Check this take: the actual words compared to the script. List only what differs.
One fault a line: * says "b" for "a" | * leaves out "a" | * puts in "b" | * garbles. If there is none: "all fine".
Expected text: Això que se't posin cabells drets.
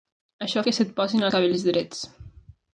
all fine